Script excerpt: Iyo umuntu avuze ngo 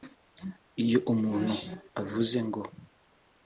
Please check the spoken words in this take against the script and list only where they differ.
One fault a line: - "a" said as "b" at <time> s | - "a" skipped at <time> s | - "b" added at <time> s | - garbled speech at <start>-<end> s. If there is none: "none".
none